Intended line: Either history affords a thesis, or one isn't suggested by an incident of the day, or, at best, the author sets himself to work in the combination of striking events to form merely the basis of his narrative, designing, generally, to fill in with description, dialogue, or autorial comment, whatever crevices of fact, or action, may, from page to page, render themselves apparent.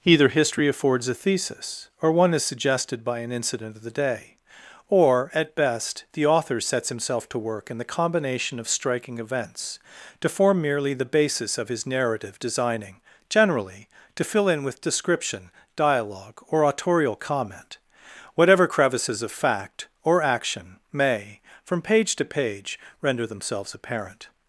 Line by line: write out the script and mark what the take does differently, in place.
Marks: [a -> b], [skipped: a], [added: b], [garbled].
Either history affords a thesis, or one [isn't -> is] suggested by an incident of the day, or, at best, the author sets himself to work in the combination of striking events to form merely the basis of his narrative, designing, generally, to fill in with description, dialogue, or autorial comment, whatever crevices of fact, or action, may, from page to page, render themselves apparent.